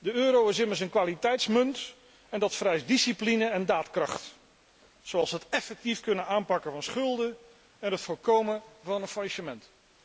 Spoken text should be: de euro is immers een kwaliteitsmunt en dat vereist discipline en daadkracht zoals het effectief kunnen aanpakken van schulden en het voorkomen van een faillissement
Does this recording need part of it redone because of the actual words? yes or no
no